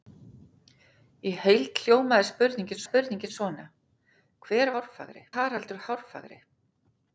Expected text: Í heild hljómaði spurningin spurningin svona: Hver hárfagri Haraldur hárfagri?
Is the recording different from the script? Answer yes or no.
no